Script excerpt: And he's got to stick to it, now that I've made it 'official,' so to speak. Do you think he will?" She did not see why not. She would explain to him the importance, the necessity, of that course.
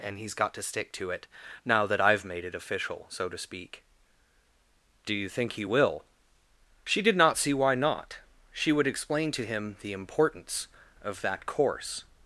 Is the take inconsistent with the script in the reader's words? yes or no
yes